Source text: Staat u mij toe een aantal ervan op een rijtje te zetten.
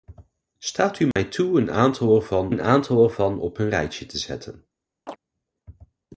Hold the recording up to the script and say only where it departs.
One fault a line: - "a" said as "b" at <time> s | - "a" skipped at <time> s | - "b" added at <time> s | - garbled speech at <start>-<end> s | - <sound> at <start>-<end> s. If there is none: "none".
- dropout at 1.1-1.2 s
- "een aantal ervan" added at 2.5 s
- chirp at 5.1-5.2 s